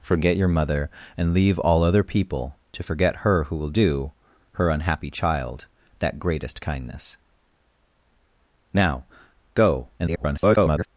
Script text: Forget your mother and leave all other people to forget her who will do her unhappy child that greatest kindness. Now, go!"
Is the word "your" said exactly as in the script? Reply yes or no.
yes